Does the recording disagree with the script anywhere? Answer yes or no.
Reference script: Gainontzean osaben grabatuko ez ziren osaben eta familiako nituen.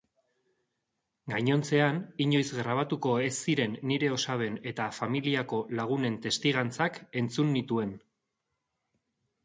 yes